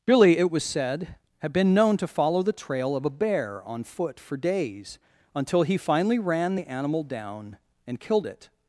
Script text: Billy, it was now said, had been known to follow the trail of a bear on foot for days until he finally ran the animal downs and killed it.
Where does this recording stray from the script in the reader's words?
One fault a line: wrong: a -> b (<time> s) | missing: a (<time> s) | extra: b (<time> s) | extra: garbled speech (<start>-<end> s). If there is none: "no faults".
missing: now (0.6 s)
wrong: downs -> down (7.0 s)